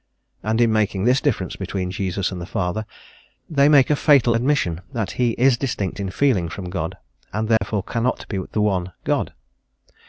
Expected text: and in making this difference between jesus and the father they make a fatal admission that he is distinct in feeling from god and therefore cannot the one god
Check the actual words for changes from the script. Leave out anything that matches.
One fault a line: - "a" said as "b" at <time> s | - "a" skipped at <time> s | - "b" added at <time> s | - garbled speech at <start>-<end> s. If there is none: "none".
- "be" added at 8.3 s